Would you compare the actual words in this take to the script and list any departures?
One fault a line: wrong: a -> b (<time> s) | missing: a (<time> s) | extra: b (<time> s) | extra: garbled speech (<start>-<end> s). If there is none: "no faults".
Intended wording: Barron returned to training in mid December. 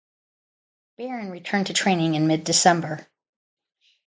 no faults